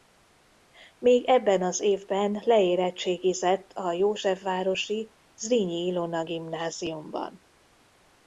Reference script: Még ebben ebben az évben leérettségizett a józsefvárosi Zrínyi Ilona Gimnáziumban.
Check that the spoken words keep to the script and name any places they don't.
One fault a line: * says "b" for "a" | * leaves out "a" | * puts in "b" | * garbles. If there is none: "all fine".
* leaves out "ebben"